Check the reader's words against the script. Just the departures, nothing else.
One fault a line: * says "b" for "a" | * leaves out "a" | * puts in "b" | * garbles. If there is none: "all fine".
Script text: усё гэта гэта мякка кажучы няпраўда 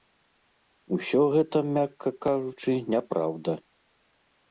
* leaves out "гэта"